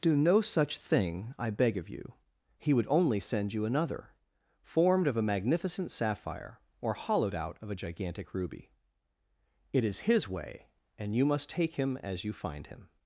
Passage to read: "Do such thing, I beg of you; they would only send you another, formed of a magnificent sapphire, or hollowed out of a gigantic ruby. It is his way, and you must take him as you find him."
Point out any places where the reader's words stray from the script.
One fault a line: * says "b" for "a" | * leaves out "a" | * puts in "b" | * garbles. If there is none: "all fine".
* puts in "no"
* says "he" for "they"